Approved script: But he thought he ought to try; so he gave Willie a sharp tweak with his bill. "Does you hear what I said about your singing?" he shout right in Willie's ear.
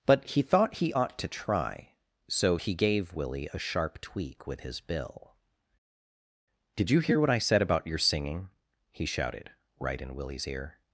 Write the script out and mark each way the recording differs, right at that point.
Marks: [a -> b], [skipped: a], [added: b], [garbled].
But he thought he ought to try; so he gave Willie a sharp tweak with his bill. ["Does -> Did] you hear what I said about your singing?" he [shout -> shouted] right in Willie's ear.